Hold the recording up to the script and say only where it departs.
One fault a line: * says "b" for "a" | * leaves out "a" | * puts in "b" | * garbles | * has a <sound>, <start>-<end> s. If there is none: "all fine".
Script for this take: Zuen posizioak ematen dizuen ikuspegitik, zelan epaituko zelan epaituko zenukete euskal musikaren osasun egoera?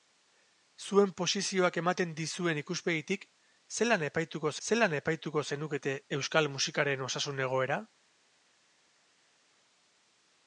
all fine